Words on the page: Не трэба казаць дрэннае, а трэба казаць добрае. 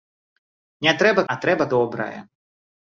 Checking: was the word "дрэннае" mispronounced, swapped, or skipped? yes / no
yes